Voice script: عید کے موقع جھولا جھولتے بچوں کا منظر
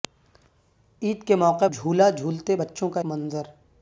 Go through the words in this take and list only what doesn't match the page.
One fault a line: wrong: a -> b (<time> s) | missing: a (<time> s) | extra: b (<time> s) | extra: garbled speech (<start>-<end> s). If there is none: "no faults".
no faults